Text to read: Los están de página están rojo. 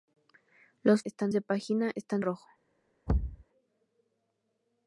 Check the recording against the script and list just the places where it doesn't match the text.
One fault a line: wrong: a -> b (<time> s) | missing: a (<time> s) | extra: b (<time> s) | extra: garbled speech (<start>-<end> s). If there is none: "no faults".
no faults